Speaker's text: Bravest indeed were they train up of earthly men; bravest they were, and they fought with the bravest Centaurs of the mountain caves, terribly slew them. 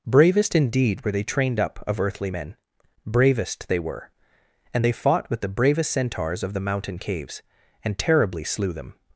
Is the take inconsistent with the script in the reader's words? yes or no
yes